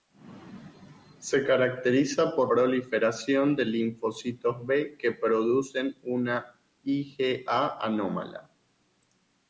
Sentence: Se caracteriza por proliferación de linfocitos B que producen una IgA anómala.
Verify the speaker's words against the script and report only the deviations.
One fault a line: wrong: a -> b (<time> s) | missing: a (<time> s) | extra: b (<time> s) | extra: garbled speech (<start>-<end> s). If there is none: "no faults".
no faults